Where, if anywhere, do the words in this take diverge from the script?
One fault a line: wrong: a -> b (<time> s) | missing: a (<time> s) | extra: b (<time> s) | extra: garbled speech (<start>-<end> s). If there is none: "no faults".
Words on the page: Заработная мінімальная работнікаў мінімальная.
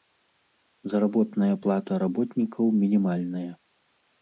wrong: мінімальная -> плата (1.7 s)